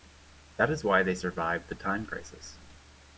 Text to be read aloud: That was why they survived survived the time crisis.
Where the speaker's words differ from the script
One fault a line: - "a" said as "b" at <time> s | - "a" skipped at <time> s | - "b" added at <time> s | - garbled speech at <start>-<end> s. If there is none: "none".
- "was" said as "is" at 0.7 s
- "survived" skipped at 1.7 s